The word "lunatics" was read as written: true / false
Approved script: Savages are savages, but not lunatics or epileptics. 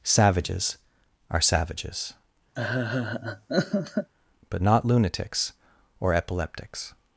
true